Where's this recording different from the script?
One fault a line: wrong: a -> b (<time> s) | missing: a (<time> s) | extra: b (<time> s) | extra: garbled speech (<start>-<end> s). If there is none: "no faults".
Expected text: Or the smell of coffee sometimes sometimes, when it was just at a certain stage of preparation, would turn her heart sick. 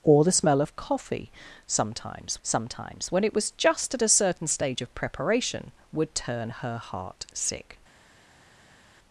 no faults